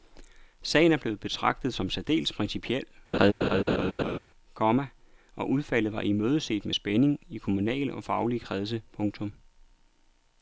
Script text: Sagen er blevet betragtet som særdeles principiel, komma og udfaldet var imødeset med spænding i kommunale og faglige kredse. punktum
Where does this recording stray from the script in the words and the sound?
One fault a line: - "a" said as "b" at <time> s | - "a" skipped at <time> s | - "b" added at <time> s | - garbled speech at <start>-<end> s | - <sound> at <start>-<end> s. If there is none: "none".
- laugh at 3.1-4.2 s